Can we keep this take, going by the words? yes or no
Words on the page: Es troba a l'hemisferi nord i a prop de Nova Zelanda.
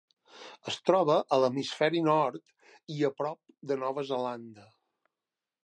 yes